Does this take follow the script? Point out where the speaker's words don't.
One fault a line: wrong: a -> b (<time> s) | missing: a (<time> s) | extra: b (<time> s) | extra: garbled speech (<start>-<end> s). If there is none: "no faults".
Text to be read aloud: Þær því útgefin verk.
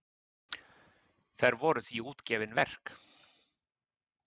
extra: voru (1.6 s)